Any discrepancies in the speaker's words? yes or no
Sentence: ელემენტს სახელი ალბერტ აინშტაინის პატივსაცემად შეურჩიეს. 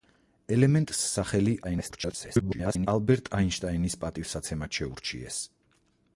yes